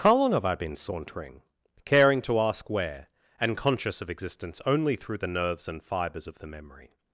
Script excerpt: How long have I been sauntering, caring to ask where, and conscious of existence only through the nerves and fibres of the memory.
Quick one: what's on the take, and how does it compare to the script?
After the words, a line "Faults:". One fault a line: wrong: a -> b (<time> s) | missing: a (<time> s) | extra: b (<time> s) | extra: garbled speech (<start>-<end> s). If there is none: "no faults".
How long have I been sauntering, caring to ask where, and conscious of existence only through the nerves and fibres of the memory.
Faults:
no faults